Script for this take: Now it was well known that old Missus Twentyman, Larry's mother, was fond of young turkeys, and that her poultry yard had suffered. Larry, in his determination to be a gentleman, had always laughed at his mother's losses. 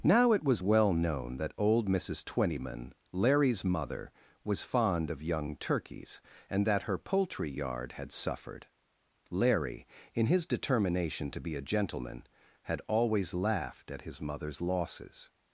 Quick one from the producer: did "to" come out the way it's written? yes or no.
yes